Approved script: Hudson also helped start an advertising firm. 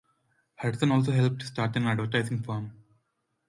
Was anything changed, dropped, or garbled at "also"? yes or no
no